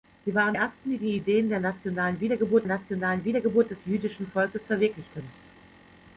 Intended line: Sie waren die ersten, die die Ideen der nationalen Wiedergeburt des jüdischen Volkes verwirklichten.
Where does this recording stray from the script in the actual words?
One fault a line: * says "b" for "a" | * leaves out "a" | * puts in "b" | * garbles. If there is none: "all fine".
* leaves out "die"
* puts in "nationalen Wiedergeburt"